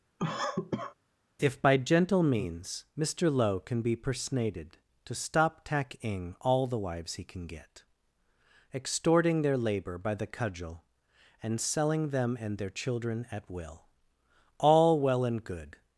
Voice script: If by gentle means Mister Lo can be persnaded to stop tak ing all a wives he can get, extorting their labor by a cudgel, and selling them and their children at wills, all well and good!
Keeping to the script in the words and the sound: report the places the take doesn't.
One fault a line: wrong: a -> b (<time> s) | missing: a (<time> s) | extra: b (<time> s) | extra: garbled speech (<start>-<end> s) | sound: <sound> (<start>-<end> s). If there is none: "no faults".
sound: cough (0.2-0.9 s)
wrong: a -> the (6.7 s)
wrong: a -> the (10.1 s)
wrong: wills -> will (13.5 s)